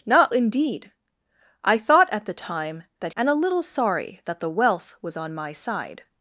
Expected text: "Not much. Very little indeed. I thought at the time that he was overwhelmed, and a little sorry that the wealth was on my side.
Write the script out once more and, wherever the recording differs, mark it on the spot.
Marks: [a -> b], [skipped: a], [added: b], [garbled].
"Not [skipped: much. Very little] indeed. I thought at the time that [skipped: he was overwhelmed,] and a little sorry that the wealth was on my side.